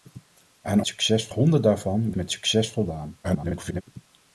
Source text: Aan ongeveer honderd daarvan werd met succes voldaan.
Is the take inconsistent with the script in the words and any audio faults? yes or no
yes